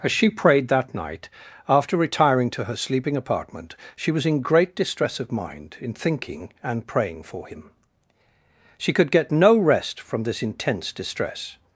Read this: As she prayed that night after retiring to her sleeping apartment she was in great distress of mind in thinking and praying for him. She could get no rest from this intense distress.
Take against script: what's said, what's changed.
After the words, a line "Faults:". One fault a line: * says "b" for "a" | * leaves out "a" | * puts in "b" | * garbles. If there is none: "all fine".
As she prayed that night after retiring to her sleeping apartment she was in great distress of mind in thinking and praying for him. She could get no rest from this intense distress.
Faults:
all fine